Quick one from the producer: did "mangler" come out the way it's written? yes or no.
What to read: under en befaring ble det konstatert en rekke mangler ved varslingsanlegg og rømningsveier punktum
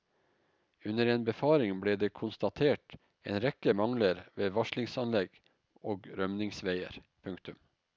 yes